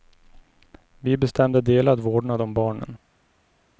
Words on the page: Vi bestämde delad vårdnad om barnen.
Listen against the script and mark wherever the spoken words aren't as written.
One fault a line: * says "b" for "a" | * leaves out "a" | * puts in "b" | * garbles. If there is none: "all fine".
all fine